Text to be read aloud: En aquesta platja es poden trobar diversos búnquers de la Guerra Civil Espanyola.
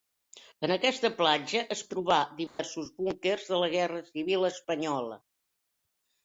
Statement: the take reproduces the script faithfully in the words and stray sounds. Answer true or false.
false